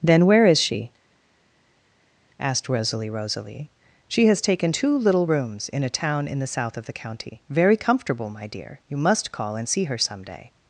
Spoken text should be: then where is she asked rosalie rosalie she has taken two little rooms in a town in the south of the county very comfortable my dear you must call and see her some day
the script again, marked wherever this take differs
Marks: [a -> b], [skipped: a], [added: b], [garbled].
then where is she asked rosalie rosalie she has taken two little rooms in a town in the south of the county very comfortable my dear you must call and see her some day